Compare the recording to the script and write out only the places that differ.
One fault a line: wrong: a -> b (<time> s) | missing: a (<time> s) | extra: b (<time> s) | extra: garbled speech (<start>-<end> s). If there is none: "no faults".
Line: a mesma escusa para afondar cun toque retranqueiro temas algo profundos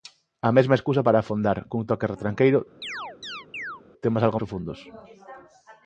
no faults